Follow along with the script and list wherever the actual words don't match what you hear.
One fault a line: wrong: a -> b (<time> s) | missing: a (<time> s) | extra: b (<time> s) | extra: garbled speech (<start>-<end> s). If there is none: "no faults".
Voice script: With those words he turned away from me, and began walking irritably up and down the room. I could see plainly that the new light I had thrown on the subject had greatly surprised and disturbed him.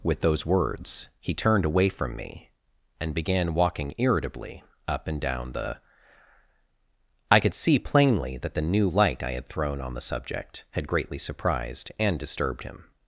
missing: room (5.8 s)